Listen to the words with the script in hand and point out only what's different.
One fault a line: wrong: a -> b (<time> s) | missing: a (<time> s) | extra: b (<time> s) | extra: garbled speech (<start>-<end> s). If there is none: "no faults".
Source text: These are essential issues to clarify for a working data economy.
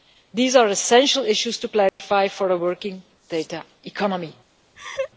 no faults